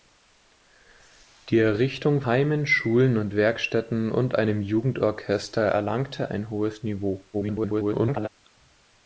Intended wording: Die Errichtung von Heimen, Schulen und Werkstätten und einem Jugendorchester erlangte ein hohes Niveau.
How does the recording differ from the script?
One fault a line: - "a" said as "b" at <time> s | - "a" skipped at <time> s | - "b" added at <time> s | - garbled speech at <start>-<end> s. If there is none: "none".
- "von" skipped at 2.2 s
- garbled speech at 7.3-8.3 s